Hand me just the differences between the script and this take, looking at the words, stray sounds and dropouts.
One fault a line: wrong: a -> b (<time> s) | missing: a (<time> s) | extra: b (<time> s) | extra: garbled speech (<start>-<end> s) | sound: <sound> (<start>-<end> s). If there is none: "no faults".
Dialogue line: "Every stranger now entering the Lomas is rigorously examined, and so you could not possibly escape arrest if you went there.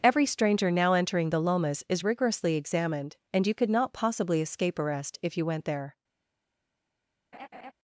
missing: so (3.5 s)
sound: laugh (7.3-7.7 s)